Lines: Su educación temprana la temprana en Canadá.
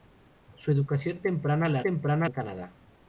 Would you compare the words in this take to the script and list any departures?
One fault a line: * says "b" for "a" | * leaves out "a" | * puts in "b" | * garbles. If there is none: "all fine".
all fine